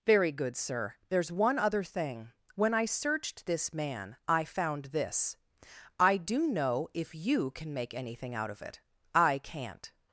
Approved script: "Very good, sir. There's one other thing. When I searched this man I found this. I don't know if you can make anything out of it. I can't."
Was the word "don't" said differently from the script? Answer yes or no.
yes